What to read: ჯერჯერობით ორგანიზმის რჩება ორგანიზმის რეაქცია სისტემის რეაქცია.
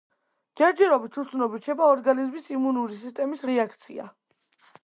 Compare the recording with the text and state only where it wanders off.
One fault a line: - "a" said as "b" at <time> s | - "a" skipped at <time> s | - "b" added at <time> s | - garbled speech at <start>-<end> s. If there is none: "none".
- "ორგანიზმის" said as "უცნობი" at 1.2 s
- "რეაქცია" said as "იმუნური" at 2.6 s